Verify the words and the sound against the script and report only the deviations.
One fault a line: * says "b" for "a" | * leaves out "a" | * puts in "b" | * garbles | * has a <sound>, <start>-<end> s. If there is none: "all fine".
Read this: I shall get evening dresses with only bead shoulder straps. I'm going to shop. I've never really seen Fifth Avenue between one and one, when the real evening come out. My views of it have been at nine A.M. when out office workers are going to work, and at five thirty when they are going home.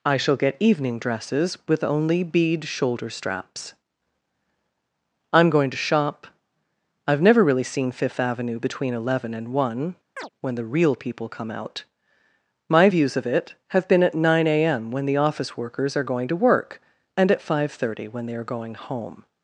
* says "eleven" for "one"
* has a chirp, 10.2-10.3 s
* says "people" for "evening"
* says "the" for "out"